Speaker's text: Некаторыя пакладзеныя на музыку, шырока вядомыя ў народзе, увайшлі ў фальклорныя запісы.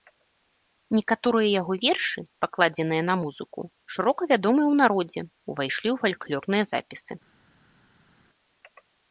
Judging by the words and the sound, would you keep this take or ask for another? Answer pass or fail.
fail